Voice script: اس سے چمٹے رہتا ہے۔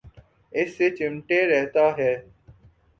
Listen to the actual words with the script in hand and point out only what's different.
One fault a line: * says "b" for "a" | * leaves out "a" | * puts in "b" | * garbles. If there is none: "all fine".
all fine